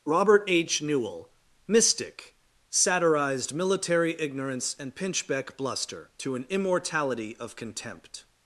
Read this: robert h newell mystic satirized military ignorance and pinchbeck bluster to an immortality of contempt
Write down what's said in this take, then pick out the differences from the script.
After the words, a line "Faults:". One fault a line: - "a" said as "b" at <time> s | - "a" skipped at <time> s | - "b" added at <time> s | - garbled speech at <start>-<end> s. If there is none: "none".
robert h newell mystic satirized military ignorance and pinchbeck bluster to an immortality of contempt
Faults:
none